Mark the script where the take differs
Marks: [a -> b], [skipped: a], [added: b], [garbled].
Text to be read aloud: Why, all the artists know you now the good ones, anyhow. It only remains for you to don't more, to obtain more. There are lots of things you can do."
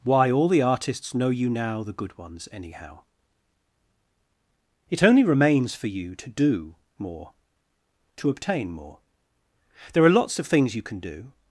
Why, all the artists know you now the good ones, anyhow. It only remains for you to [don't -> do] more, to obtain more. There are lots of things you can do."